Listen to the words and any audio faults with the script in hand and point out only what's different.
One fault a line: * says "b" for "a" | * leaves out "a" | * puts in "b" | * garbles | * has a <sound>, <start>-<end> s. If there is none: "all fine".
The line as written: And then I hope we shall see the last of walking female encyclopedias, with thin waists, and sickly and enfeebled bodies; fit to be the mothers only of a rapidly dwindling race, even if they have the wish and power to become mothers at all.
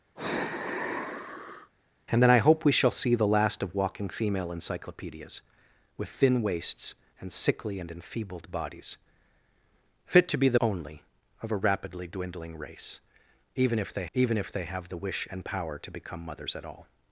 * has a sigh, 0.2-1.7 s
* leaves out "mothers"
* puts in "even if they"